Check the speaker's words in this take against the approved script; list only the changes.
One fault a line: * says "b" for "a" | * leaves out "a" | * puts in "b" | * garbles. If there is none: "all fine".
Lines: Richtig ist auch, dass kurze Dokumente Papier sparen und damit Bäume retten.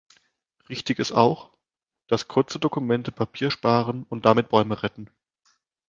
all fine